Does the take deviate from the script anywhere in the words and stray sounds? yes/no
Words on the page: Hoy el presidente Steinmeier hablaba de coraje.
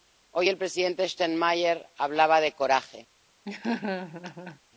yes